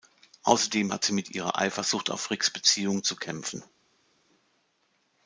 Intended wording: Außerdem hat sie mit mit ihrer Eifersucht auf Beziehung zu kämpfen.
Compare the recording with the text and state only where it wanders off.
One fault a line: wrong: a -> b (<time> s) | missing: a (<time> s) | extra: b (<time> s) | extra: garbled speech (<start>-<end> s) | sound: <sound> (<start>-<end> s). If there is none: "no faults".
missing: mit (1.3 s)
extra: Ricks (2.3 s)